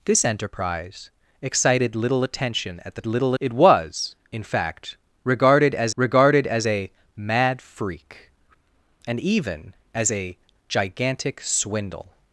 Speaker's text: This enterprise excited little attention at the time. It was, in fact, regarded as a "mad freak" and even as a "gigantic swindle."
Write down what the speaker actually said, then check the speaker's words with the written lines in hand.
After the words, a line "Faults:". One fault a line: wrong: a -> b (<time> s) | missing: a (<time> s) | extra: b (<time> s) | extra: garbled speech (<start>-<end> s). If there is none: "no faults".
This enterprise excited little attention at the little. It was, in fact, regarded as regarded as a "mad freak" and even as a "gigantic swindle."
Faults:
wrong: time -> little (3.1 s)
extra: regarded as (5.9 s)